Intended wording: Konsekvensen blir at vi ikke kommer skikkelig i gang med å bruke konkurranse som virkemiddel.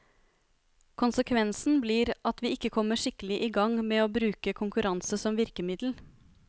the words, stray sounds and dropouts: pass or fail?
pass